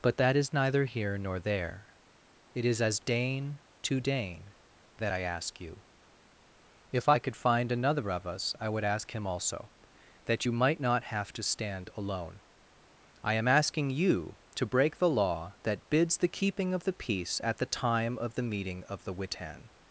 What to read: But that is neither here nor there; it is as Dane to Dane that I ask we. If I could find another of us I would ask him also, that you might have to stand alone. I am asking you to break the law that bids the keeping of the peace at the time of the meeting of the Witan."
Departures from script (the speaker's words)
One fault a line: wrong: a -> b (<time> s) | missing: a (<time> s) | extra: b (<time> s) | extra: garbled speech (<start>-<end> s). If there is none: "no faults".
wrong: we -> you (5.6 s)
extra: not (10.8 s)